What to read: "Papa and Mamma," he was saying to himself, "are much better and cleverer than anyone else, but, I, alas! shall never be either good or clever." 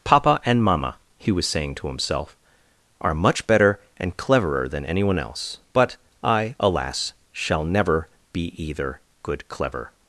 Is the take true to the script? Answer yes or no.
no